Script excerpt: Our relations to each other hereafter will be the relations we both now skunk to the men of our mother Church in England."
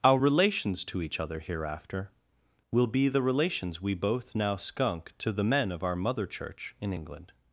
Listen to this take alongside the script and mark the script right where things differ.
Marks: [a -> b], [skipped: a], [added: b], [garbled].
Our relations to each other hereafter will be the relations we both now skunk to the men of our mother Church in England."